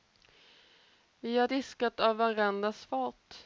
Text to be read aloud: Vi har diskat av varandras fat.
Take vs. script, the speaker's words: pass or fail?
pass